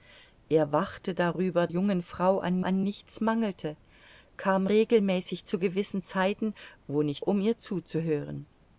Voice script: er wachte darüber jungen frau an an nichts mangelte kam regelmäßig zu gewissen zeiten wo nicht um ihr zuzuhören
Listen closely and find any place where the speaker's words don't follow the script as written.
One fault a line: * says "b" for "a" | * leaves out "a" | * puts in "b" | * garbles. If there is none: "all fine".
all fine